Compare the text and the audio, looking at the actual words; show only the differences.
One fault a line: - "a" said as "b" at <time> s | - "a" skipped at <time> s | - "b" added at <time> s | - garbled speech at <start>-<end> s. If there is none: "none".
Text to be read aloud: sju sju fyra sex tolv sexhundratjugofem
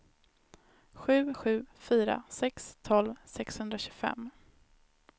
none